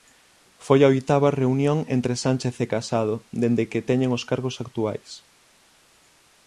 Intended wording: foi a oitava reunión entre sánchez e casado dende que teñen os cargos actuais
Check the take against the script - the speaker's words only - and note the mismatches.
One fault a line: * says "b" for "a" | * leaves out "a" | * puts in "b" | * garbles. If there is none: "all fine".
all fine